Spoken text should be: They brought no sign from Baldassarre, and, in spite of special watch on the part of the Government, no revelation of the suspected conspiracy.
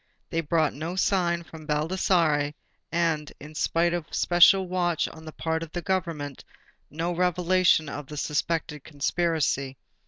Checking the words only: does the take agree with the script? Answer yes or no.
yes